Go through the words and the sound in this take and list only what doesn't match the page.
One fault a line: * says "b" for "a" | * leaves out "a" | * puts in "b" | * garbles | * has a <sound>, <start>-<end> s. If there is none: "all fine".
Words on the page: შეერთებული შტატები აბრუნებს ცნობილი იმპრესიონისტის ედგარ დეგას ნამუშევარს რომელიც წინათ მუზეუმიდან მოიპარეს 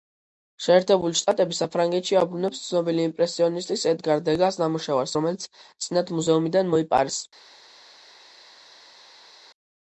* puts in "საფრანგეთში"